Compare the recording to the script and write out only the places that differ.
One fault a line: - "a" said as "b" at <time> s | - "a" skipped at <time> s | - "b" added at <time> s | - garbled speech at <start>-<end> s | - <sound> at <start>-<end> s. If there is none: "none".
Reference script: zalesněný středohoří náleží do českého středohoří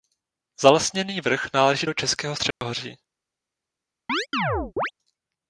- "středohoří" said as "vrch" at 1.2 s
- dropout at 2.5-2.6 s
- chirp at 4.1-4.9 s